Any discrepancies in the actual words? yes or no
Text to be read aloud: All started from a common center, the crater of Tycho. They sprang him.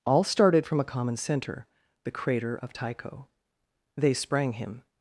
no